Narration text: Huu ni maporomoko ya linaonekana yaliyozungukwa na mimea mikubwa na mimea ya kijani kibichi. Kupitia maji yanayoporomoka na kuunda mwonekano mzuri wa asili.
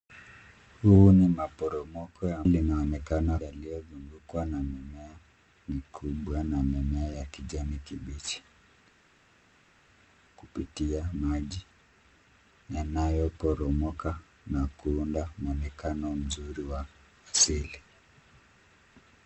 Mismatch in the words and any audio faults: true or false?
false